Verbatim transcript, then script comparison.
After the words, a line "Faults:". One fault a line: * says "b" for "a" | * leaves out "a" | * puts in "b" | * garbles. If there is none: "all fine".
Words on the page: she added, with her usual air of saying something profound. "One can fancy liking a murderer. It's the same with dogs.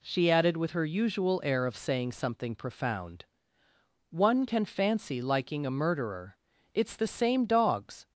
she added, with her usual air of saying something profound. "One can fancy liking a murderer. It's the same dogs.
Faults:
* leaves out "with"